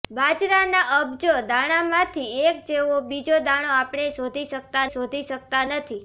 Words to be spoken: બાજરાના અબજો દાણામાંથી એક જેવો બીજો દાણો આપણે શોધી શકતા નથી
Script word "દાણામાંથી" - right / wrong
right